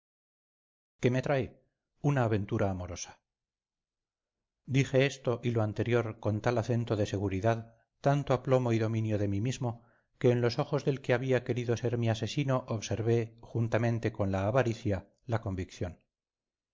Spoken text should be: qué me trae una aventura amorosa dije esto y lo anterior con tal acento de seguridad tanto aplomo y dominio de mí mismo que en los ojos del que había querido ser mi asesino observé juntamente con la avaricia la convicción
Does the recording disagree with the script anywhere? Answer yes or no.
no